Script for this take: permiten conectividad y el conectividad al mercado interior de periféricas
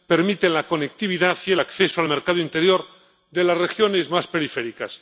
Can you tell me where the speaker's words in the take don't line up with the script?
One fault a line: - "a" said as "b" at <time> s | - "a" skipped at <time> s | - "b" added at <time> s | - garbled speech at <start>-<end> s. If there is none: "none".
- "la" added at 0.5 s
- "conectividad" said as "acceso" at 1.6 s
- "las regiones más" added at 3.4 s